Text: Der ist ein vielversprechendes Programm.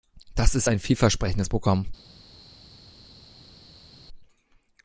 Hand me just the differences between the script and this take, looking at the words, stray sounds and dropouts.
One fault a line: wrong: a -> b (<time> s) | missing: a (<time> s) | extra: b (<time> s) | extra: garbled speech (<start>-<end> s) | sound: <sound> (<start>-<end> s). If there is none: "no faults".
wrong: Der -> Das (0.3 s)